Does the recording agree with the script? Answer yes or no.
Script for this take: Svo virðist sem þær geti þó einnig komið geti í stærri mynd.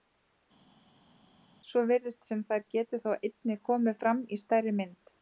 no